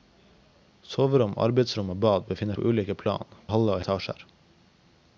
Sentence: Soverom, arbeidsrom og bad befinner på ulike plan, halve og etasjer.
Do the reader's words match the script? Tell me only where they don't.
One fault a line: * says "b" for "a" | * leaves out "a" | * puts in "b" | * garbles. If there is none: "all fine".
all fine